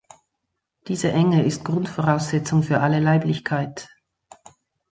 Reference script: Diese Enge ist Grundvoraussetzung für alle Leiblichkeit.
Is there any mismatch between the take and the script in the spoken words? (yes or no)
no